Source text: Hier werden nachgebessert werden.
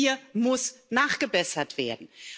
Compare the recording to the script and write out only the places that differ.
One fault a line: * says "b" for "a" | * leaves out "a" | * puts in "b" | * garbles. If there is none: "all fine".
* says "muss" for "werden"